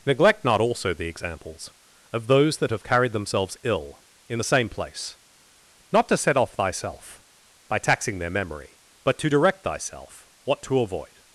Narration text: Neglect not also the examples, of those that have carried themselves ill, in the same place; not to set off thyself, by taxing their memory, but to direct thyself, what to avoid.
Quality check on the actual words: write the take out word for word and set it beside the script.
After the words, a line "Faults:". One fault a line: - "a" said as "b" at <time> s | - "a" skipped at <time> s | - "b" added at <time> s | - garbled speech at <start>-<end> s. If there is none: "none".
Neglect not also the examples, of those that have carried themselves ill, in the same place; not to set off thyself, by taxing their memory, but to direct thyself, what to avoid.
Faults:
none